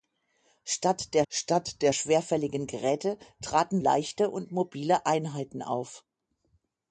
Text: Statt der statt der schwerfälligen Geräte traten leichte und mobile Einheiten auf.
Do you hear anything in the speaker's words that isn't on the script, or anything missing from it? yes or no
no